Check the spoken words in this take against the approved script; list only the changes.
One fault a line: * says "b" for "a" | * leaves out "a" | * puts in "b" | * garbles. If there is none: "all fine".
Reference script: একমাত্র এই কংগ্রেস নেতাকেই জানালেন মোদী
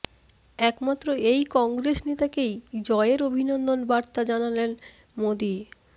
* puts in "জয়ের অভিনন্দন বার্তা"